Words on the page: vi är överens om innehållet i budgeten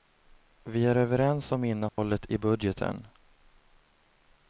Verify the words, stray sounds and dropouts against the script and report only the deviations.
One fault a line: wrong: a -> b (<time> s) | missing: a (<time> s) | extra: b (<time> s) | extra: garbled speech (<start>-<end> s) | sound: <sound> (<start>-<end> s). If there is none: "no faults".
sound: dropout (1.9-2.0 s)